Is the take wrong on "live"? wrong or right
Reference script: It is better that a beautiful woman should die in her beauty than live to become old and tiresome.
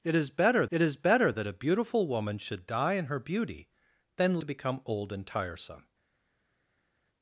wrong